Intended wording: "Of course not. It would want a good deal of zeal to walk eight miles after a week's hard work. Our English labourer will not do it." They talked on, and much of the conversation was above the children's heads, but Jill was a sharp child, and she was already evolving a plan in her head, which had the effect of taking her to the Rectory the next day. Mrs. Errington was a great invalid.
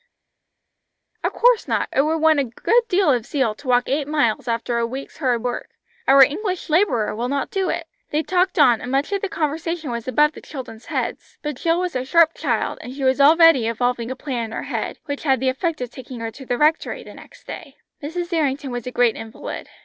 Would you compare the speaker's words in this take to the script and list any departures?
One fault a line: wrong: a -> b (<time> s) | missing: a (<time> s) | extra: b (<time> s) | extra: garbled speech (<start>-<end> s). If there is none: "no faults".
no faults